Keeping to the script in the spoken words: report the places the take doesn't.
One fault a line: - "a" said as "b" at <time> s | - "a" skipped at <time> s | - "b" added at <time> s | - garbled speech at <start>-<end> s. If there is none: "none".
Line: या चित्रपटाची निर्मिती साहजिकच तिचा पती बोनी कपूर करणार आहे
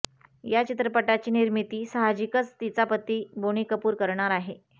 none